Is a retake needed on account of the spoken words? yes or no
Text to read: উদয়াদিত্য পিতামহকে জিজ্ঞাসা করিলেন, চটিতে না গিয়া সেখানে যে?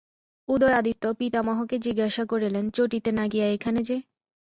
yes